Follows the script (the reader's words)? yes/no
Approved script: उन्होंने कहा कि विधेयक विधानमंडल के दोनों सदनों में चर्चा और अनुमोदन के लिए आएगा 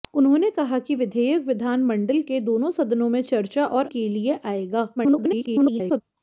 no